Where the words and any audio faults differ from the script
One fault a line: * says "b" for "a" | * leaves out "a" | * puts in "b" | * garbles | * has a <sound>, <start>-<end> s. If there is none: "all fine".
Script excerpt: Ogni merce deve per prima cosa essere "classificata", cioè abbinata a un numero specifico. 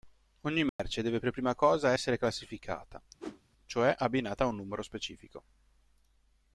* has a dropout, 0.7-0.8 s
* has a whoosh, 3.2-3.4 s